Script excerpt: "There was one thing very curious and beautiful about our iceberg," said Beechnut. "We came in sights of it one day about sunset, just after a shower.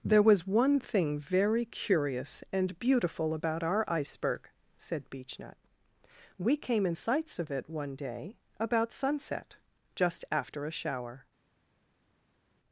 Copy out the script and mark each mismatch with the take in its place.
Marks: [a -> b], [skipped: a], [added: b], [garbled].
"There was one thing very curious and beautiful about our iceberg," said Beechnut. "We came in sights of it one day about sunset, just after a shower.